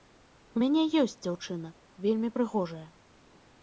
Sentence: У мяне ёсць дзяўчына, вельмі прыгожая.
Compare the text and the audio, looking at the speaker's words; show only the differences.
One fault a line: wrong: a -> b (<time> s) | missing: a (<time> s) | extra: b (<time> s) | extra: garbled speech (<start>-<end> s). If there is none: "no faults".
no faults